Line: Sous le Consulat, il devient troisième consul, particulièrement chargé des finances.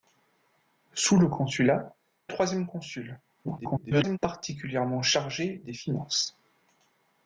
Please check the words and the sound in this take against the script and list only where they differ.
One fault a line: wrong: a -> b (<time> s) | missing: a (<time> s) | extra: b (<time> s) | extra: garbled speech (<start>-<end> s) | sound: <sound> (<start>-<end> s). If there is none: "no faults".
missing: il devient (1.9 s)
extra: garbled speech (3.4-4.2 s)